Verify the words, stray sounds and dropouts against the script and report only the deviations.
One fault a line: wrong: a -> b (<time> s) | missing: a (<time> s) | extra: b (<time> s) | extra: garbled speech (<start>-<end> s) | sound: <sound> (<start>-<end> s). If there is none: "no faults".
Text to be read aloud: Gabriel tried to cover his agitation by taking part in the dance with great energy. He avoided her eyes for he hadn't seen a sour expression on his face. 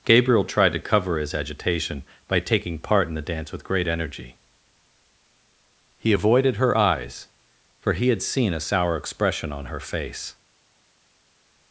wrong: hadn't -> had (8.1 s)
wrong: his -> her (9.7 s)